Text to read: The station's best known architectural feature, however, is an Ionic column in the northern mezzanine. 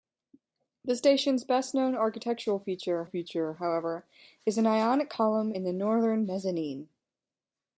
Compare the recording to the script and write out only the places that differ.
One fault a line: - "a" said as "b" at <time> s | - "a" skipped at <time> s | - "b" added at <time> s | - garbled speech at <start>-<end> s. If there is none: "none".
- "feature" added at 3.0 s